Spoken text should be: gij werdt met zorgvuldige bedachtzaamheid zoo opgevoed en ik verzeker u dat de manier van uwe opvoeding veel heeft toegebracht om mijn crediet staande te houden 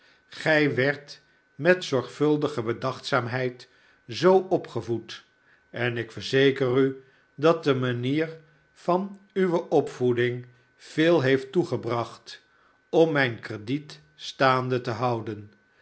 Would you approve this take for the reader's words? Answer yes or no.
yes